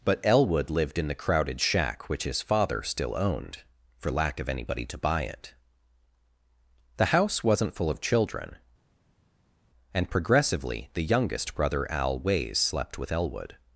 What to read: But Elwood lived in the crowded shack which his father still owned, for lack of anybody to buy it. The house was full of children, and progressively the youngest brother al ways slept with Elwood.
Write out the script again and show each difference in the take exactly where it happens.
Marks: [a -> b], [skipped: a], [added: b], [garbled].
But Elwood lived in the crowded shack which his father still owned, for lack of anybody to buy it. The house [was -> wasn't] full of children, and progressively the youngest brother al ways slept with Elwood.